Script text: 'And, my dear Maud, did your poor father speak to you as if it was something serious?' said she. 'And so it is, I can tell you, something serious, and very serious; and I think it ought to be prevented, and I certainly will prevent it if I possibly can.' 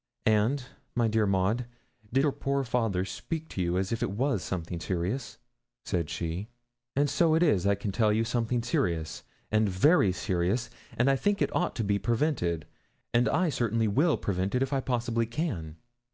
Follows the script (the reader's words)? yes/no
yes